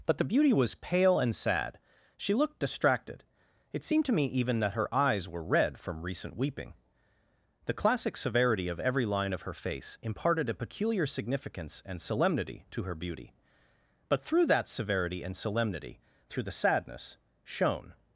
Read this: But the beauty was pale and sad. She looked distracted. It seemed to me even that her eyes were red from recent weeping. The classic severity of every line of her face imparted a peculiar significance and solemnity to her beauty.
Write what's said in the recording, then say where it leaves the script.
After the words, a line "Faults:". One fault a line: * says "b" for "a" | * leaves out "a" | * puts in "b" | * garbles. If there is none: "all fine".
But the beauty was pale and sad. She looked distracted. It seemed to me even that her eyes were red from recent weeping. The classic severity of every line of her face imparted a peculiar significance and solemnity to her beauty. But through that severity and solemnity, through the sadness, shone
Faults:
* puts in "But through that severity and solemnity through the sadness shone"